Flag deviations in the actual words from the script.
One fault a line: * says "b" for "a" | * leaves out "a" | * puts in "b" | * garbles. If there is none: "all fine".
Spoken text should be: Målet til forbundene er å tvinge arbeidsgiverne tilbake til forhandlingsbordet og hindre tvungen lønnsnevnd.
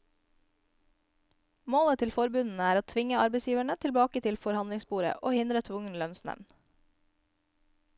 all fine